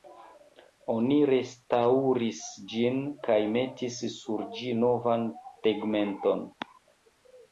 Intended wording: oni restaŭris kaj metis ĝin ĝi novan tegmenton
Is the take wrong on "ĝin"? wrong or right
wrong